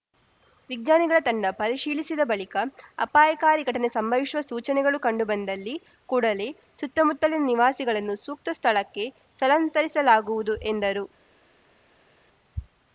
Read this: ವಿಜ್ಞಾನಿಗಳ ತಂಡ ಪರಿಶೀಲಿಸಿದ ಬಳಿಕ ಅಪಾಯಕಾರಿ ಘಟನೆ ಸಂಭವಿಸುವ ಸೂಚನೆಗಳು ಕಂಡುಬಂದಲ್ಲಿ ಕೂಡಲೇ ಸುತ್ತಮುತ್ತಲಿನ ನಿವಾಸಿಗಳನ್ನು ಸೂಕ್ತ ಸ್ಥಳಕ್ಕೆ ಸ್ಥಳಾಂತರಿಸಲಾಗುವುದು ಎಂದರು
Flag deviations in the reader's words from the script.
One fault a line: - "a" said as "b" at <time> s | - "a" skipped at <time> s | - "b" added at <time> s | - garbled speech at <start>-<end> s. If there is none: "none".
none